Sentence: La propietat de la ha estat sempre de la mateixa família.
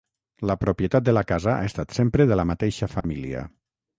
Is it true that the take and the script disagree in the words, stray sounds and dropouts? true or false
true